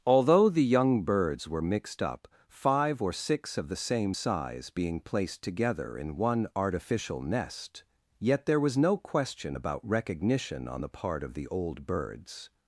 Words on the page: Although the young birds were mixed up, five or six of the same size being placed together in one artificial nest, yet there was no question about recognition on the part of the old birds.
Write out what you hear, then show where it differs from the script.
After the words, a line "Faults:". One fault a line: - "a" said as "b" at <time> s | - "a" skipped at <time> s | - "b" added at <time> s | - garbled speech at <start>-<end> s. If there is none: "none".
Although the young birds were mixed up, five or six of the same size being placed together in one artificial nest, yet there was no question about recognition on the part of the old birds.
Faults:
none